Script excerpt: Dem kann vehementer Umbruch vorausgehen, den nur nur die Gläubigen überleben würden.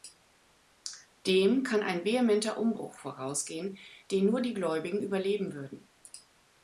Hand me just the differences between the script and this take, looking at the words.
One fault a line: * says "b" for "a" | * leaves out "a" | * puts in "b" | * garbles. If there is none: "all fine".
* puts in "ein"
* leaves out "nur"